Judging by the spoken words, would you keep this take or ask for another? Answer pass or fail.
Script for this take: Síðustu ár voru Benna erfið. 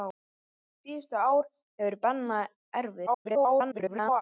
fail